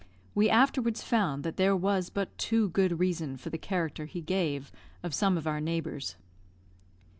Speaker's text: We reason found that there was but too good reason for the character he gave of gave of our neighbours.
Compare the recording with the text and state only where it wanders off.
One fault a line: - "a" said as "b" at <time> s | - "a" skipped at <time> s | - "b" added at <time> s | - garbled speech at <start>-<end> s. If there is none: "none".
- "reason" said as "afterwards" at 0.5 s
- "gave" said as "some" at 5.1 s